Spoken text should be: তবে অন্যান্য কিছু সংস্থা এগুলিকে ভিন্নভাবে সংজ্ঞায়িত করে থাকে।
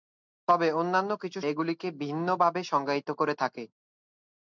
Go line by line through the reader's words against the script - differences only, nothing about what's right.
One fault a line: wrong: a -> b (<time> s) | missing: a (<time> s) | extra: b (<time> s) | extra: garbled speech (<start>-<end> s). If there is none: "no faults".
missing: সংস্থা (1.4 s)